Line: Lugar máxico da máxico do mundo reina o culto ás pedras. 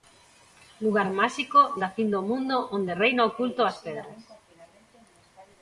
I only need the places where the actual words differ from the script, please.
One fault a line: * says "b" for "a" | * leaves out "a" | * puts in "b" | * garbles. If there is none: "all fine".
* says "fin" for "máxico"
* puts in "onde"